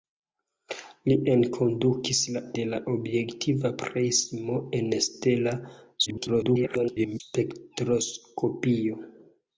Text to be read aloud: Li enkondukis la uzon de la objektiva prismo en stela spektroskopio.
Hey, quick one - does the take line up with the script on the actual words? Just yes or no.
no